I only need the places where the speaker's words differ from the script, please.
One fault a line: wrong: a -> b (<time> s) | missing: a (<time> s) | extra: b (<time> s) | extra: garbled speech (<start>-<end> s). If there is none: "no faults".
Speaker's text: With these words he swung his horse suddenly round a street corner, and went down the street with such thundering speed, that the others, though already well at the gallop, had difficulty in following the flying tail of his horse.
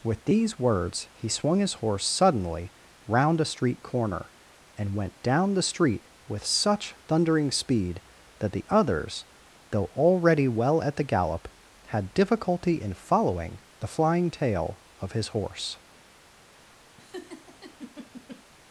no faults